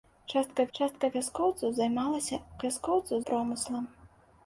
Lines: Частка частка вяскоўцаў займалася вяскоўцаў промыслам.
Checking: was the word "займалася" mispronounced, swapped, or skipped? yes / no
no